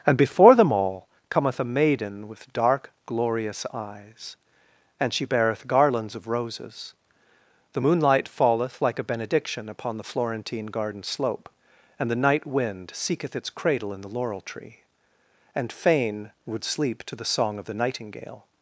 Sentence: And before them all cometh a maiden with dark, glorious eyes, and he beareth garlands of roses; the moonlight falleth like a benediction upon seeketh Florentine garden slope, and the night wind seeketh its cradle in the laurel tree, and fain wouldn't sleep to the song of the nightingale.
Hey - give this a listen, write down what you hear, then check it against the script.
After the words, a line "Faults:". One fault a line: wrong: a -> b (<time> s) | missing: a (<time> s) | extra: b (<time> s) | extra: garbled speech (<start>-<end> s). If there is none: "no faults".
And before them all cometh a maiden with dark, glorious eyes, and she beareth garlands of roses; the moonlight falleth like a benediction upon the Florentine garden slope, and the night wind seeketh its cradle in the laurel tree, and fain would sleep to the song of the nightingale.
Faults:
wrong: he -> she (5.1 s)
wrong: seeketh -> the (10.0 s)
wrong: wouldn't -> would (16.5 s)